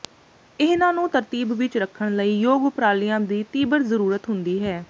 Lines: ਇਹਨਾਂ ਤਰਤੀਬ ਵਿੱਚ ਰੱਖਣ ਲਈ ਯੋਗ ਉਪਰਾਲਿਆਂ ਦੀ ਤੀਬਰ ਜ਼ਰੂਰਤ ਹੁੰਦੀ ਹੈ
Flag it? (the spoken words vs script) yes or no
yes